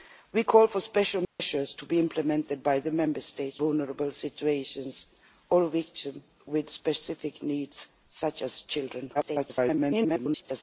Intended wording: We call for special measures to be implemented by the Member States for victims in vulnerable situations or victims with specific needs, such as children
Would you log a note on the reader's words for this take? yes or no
yes